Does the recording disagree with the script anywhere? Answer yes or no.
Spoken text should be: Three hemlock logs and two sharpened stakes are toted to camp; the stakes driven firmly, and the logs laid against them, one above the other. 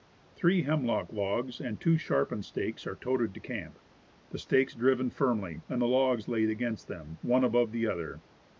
no